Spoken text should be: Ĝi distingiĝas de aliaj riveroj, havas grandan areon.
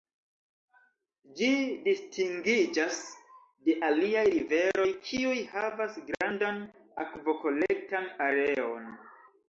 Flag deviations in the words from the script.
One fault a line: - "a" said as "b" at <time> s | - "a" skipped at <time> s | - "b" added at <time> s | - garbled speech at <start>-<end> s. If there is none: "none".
- "kiuj" added at 5.1 s
- "akvokolektan" added at 7.1 s